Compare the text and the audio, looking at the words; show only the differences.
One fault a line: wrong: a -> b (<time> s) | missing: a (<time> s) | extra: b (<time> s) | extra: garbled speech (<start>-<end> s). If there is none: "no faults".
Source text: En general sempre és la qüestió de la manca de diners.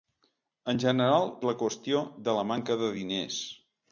missing: sempre (1.3 s)